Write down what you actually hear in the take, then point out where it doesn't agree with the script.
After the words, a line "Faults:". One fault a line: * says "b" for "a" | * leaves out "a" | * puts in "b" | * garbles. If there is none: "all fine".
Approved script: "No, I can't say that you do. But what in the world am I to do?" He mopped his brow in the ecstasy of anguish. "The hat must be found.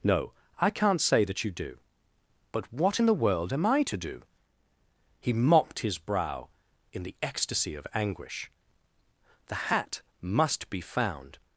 "No, I can't say that you do. But what in the world am I to do?" He mopped his brow in the ecstasy of anguish. "The hat must be found.
Faults:
all fine